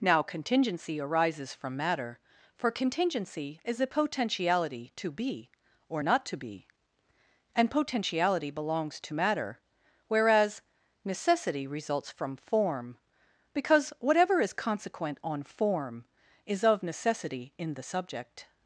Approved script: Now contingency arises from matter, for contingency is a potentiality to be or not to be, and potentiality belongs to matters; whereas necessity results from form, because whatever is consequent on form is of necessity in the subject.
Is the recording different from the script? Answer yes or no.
yes